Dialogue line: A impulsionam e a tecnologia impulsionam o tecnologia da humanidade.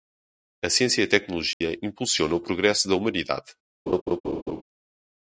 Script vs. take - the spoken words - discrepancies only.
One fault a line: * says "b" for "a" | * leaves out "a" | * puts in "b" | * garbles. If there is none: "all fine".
* says "ciência" for "impulsionam"
* says "progresso" for "tecnologia"